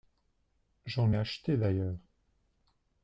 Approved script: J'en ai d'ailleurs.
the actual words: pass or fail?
fail